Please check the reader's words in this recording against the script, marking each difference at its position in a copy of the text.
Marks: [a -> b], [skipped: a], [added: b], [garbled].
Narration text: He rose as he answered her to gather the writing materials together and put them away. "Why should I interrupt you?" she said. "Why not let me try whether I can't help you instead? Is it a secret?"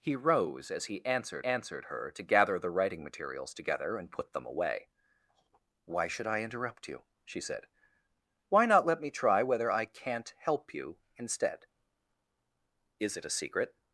He rose as he answered [added: answered] her to gather the writing materials together and put them away. "Why should I interrupt you?" she said. "Why not let me try whether I can't help you instead? Is it a secret?"